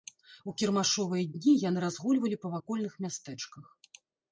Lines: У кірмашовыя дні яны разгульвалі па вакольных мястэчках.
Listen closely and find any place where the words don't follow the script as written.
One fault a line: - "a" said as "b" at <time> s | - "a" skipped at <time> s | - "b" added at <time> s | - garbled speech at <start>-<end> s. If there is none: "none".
none